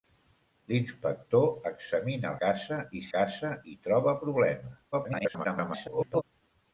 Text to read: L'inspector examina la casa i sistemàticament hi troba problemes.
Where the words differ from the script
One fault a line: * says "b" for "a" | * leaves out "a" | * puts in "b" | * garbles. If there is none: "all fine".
* leaves out "la"
* says "casa" for "sistemàticament"
* garbles